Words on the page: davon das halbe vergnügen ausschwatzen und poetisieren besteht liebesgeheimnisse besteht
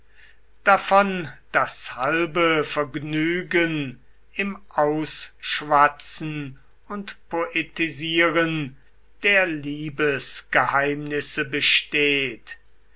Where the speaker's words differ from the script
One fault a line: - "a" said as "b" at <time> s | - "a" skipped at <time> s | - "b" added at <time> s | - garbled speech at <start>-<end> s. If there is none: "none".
- "im" added at 4.3 s
- "besteht" said as "der" at 9.2 s